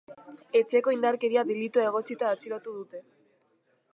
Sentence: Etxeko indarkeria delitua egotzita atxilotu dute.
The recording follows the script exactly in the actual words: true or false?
true